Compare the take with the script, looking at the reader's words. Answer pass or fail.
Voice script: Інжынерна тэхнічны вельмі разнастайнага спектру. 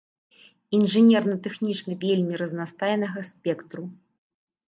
pass